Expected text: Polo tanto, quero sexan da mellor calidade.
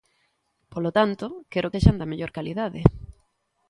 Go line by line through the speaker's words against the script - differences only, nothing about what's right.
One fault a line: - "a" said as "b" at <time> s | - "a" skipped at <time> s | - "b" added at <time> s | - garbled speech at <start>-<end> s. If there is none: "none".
none